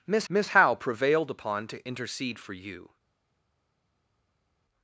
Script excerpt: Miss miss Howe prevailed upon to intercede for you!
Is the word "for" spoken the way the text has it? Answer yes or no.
yes